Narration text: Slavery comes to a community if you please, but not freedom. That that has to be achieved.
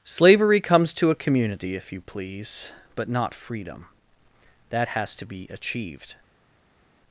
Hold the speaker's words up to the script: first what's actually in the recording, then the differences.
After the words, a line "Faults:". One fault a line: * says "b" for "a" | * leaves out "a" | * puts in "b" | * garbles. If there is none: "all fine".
Slavery comes to a community if you please, but not freedom. That has to be achieved.
Faults:
* leaves out "that"